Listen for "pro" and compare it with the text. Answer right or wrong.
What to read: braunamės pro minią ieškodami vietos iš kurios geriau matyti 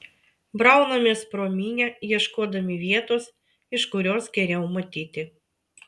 right